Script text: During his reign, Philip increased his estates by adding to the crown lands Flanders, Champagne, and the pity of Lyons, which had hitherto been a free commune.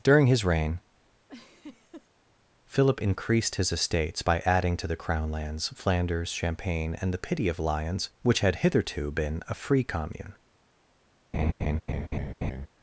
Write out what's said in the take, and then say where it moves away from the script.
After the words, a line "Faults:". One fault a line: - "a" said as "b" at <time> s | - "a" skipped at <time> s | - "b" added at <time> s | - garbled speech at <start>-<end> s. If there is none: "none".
During his reign, Philip increased his estates by adding to the crown lands Flanders, Champagne, and the pity of Lyons, which had hitherto been a free commune.
Faults:
none